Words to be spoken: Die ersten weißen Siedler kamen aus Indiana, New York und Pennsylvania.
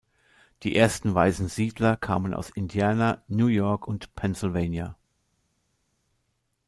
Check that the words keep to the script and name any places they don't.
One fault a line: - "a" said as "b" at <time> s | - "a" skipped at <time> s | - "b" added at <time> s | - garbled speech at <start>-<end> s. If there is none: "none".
none